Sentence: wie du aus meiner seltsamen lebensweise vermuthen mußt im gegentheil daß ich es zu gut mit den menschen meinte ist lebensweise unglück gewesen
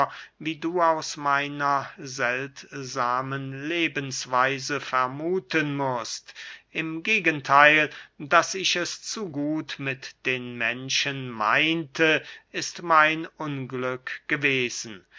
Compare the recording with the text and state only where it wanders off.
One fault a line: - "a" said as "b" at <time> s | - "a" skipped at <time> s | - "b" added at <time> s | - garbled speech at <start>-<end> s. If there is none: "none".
- "lebensweise" said as "mein" at 12.8 s